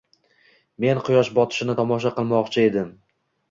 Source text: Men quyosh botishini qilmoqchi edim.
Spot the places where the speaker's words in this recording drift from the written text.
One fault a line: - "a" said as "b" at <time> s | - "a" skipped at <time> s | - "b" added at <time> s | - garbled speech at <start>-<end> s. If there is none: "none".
- "tomosha" added at 1.8 s